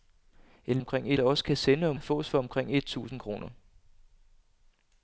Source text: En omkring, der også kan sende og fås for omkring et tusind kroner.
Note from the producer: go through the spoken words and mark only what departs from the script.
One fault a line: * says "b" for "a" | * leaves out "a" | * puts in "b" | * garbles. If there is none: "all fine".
all fine